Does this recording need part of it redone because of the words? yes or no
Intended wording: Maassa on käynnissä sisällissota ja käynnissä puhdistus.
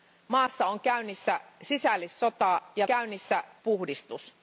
no